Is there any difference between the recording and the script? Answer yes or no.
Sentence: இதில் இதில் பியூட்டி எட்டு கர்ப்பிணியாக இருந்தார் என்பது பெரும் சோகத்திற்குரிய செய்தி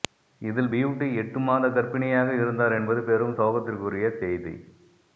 yes